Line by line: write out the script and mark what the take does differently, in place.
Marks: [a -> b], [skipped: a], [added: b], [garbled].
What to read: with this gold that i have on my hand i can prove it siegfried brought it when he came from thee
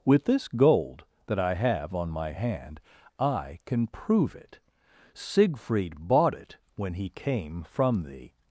with this gold that i have on my hand i can prove it siegfried [brought -> bought] it when he came from thee